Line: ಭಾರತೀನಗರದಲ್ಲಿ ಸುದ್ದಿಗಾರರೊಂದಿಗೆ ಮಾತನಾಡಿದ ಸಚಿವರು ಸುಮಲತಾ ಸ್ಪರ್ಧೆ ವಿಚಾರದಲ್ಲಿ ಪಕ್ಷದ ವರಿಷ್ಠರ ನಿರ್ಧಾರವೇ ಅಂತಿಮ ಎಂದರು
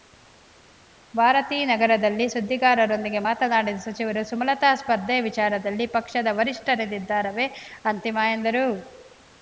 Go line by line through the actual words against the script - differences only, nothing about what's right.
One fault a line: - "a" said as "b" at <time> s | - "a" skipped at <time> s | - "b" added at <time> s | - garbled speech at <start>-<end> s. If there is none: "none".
none